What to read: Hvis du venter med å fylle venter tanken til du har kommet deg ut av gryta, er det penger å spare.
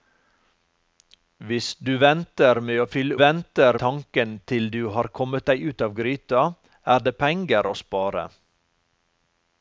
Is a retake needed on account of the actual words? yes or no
no